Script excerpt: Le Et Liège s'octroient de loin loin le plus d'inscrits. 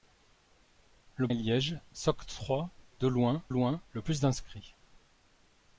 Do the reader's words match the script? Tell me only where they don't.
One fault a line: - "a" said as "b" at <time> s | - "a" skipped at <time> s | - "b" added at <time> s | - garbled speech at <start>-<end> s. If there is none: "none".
none